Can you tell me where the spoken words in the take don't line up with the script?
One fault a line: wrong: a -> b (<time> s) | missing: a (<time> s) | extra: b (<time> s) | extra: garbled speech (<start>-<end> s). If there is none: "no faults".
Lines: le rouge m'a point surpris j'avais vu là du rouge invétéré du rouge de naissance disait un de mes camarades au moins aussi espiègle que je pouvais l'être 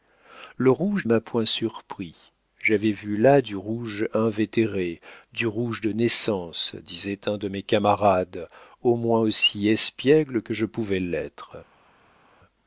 no faults